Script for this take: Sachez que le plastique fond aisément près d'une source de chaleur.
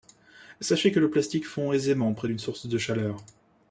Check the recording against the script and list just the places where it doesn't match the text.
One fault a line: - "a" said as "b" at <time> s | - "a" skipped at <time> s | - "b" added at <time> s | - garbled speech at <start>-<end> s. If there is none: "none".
none